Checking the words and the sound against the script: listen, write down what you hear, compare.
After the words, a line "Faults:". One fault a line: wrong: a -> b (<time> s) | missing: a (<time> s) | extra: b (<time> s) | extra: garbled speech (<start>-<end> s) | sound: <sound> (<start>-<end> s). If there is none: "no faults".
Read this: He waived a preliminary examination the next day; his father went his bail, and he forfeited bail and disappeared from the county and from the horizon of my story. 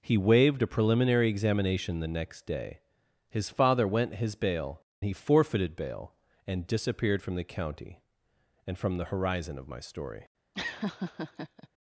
He waived a preliminary examination the next day; his father went his bail, he forfeited bail and disappeared from the county and from the horizon of my story.
Faults:
missing: and (4.8 s)
sound: laugh (10.5-11.7 s)